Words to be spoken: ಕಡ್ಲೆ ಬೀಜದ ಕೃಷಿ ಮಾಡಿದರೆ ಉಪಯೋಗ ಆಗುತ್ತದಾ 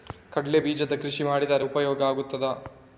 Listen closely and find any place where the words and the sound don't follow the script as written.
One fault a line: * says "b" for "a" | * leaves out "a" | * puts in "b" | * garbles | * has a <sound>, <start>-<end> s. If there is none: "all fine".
all fine